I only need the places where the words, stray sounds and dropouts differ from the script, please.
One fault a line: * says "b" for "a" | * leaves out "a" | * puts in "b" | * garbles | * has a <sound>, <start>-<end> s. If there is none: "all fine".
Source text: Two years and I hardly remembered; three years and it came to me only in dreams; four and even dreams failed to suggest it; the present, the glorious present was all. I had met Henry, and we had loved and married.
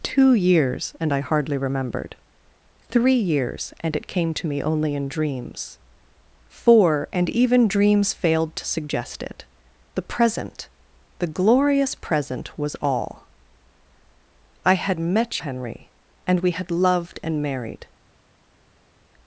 all fine